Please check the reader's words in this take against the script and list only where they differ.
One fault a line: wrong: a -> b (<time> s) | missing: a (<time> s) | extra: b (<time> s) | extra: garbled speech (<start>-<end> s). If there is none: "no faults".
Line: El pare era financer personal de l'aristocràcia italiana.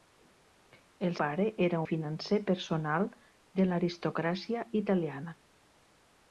no faults